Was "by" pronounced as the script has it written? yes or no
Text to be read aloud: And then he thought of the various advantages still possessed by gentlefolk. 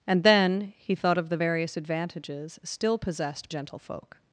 no